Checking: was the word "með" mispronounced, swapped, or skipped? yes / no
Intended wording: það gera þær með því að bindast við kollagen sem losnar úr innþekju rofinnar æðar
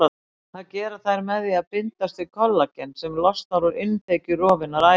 no